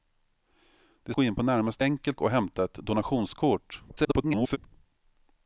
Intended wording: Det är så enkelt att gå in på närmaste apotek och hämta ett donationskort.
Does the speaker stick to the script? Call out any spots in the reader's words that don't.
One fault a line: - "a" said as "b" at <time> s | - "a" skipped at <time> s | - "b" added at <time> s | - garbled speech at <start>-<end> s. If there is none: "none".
- "så enkelt att" skipped at 1.1 s
- "apotek" said as "enkelt" at 1.8 s
- garbled speech at 3.9-4.6 s